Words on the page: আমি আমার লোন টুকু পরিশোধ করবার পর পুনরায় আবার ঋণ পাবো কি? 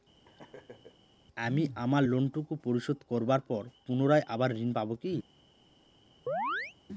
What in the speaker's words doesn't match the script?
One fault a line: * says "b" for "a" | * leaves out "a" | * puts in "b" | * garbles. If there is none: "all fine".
all fine